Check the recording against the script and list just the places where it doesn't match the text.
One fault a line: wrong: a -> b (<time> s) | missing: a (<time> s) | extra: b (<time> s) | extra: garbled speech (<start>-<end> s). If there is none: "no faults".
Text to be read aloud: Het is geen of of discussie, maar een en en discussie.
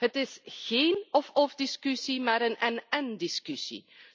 no faults